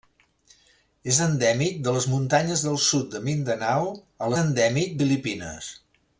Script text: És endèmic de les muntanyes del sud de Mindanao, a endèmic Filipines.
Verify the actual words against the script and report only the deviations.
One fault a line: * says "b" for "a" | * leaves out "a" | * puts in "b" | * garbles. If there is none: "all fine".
all fine